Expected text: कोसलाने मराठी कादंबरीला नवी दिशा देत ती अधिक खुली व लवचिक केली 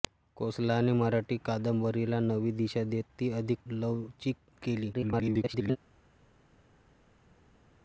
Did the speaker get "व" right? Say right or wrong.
wrong